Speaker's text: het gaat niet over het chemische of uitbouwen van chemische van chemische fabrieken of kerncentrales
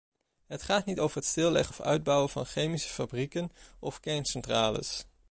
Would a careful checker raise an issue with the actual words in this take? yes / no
yes